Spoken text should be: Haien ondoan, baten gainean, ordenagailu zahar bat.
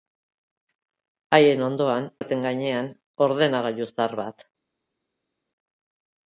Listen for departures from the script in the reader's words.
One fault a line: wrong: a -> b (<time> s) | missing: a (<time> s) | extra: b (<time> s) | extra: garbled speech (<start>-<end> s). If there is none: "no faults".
no faults